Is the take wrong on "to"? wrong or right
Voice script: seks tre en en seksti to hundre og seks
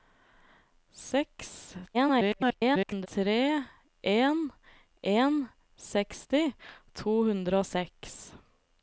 right